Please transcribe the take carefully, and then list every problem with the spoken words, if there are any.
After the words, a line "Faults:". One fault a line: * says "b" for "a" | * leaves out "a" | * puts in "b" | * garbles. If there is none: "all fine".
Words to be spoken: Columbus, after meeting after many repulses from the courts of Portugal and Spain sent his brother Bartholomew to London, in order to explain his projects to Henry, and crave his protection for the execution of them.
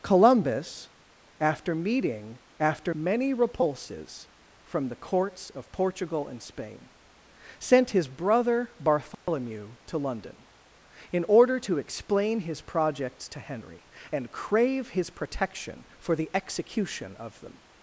Columbus, after meeting after many repulses from the courts of Portugal and Spain sent his brother Bartholomew to London, in order to explain his projects to Henry, and crave his protection for the execution of them.
Faults:
all fine